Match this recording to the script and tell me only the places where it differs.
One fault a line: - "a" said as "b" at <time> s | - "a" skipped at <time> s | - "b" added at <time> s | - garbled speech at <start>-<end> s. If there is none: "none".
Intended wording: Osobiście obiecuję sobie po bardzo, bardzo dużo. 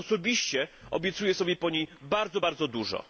- "niej" added at 1.7 s